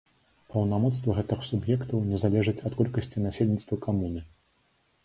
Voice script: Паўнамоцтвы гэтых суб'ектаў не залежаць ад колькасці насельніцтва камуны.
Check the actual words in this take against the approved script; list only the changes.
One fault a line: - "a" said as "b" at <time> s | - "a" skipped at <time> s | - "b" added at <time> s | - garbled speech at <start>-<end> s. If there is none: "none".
none